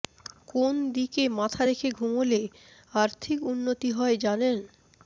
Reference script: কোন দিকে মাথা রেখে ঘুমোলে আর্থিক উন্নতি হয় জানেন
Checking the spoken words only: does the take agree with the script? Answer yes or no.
yes